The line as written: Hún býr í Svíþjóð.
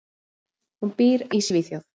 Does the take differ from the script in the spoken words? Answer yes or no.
no